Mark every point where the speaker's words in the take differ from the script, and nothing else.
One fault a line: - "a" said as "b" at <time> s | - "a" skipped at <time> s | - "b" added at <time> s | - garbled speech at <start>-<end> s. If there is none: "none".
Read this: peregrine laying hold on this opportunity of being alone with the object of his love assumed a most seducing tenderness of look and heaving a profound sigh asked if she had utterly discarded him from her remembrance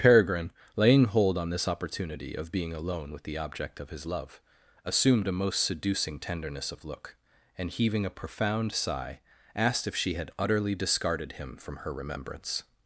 none